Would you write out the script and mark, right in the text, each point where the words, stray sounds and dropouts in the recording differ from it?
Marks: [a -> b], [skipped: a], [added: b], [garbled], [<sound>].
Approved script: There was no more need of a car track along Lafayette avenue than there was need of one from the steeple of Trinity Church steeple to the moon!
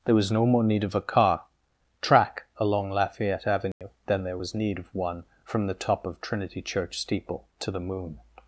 There was no more need of a car track along Lafayette avenue [dropout] than there was need of one from the [steeple -> top] of Trinity Church steeple to the moon!